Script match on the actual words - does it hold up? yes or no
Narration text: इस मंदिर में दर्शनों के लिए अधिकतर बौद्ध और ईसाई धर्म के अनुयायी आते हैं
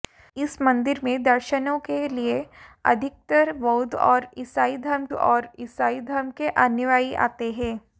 no